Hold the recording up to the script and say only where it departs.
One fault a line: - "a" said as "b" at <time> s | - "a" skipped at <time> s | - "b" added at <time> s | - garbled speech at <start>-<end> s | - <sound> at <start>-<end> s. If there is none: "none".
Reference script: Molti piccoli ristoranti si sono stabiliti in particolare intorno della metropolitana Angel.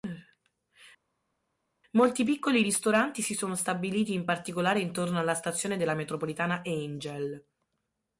- "alla stazione" added at 5.2 s